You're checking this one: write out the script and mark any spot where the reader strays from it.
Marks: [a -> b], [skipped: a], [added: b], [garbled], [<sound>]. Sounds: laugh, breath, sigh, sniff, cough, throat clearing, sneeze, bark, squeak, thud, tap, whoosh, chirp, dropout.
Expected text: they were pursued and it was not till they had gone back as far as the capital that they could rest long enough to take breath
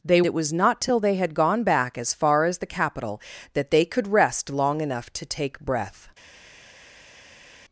they [skipped: were pursued and] it was not till they had gone back as far as the capital that they could rest long enough to take breath